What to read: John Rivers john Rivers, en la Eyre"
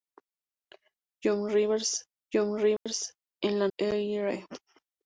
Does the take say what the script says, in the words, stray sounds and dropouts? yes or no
no